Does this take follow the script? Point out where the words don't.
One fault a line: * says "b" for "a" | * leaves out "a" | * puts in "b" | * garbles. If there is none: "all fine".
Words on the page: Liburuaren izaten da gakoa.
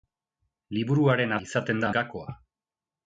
all fine